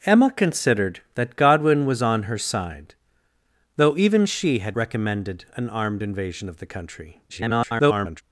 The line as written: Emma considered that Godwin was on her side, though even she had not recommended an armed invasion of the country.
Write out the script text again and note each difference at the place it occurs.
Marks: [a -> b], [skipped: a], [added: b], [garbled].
Emma considered that Godwin was on her side, though even she had [skipped: not] recommended an armed invasion of the country. [garbled]